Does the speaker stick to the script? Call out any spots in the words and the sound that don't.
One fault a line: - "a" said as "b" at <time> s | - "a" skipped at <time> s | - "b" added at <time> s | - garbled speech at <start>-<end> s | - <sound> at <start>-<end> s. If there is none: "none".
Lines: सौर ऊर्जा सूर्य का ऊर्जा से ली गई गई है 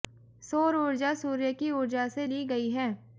- "का" said as "की" at 1.5 s
- "गई" skipped at 2.7 s